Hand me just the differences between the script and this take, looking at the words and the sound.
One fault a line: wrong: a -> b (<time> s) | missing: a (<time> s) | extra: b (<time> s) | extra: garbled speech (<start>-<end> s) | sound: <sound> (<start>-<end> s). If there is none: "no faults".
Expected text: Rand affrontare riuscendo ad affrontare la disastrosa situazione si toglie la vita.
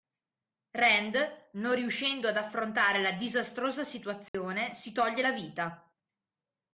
wrong: affrontare -> non (1.5 s)
sound: dropout (4.3-4.3 s)